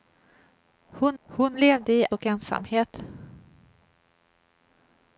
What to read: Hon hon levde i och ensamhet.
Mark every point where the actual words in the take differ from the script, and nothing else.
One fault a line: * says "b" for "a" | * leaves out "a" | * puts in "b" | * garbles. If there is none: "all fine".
all fine